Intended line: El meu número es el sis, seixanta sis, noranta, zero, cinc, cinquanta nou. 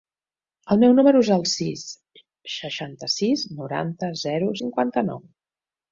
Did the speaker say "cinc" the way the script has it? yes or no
no